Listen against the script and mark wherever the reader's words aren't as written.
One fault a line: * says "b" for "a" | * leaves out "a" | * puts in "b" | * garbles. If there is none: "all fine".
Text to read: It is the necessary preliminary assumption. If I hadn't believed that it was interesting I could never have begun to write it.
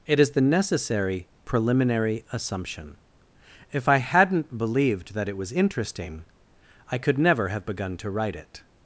all fine